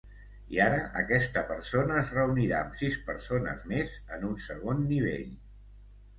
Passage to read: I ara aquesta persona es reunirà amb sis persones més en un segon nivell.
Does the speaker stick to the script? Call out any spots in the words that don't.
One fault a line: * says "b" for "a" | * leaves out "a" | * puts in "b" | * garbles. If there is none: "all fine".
all fine